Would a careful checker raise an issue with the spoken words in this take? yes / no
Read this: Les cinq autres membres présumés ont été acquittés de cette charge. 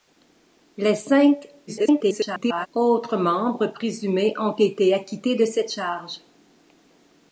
yes